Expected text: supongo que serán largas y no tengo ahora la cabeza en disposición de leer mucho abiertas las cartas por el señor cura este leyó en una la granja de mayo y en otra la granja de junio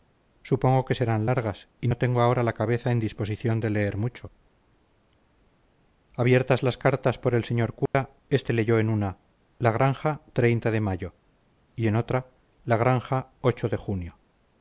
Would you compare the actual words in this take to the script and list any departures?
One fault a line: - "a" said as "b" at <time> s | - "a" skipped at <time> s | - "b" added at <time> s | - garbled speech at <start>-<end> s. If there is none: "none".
none